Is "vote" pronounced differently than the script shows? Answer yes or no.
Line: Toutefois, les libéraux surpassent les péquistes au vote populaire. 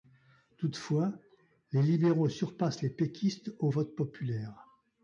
no